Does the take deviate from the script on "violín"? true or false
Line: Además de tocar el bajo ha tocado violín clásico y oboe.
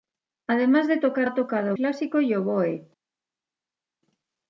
true